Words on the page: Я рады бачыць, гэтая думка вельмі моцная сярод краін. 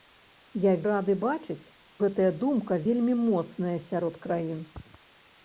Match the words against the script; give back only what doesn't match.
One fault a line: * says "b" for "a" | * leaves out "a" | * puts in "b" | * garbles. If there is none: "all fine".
all fine